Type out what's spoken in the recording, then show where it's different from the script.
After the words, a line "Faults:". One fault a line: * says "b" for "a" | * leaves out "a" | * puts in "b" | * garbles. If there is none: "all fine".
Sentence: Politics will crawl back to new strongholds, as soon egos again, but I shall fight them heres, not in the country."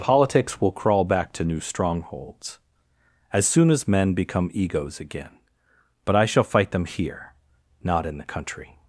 Politics will crawl back to new strongholds, as soon as men become egos again, but I shall fight them here, not in the country."
Faults:
* puts in "as men become"
* says "here" for "heres"